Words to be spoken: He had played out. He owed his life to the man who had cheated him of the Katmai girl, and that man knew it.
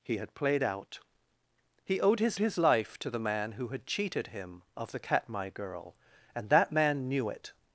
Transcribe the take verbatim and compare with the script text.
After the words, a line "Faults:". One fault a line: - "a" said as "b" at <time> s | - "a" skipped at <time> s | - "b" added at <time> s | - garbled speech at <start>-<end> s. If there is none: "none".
He had played out. He owed his his life to the man who had cheated him of the Katmai girl, and that man knew it.
Faults:
- "his" added at 2.4 s